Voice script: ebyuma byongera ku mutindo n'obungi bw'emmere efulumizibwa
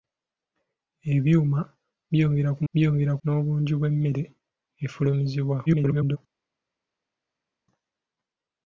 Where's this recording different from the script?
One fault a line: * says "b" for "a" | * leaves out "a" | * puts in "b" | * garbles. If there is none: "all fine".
* says "byongera" for "mutindo"
* garbles